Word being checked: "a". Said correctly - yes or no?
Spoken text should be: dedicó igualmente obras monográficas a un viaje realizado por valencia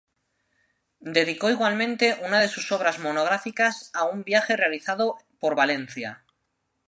yes